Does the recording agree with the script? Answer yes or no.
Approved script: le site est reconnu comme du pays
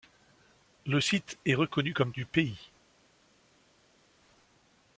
yes